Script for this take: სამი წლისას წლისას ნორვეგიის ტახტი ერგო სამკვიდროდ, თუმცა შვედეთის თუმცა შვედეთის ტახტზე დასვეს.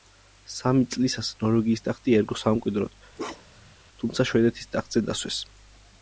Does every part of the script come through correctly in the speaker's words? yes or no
no